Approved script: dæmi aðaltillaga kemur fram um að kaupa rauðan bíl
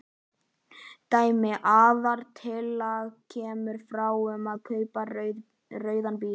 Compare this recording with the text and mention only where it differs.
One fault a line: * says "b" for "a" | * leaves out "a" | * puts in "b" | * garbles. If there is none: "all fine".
all fine